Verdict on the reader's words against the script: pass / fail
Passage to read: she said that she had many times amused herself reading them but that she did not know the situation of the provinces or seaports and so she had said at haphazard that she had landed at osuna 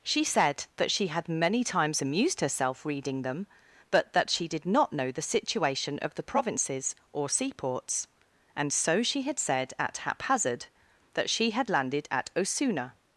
pass